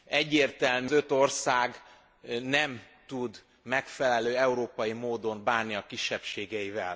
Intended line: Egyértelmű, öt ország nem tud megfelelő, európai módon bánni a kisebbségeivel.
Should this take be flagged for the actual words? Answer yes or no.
no